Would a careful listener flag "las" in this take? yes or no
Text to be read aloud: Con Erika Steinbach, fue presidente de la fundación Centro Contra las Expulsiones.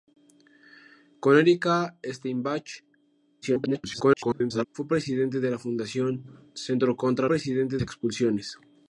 yes